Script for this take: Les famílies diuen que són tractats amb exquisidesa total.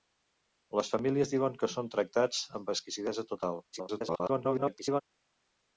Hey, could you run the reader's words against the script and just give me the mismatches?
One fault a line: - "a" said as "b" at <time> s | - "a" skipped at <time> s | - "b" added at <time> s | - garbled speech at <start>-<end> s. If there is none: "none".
- garbled speech at 3.7-5.0 s